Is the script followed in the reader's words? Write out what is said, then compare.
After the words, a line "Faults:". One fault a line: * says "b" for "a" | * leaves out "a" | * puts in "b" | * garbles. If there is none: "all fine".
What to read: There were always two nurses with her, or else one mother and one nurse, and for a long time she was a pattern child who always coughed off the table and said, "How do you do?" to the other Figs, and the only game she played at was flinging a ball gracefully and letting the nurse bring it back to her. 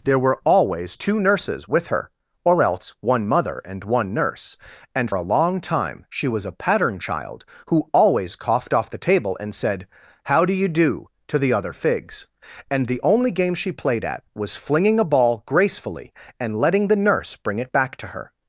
There were always two nurses with her, or else one mother and one nurse, and a long time she was a pattern child who always coughed off the table and said, "How do you do?" to the other Figs, and the only game she played at was flinging a ball gracefully and letting the nurse bring it back to her.
Faults:
* leaves out "for"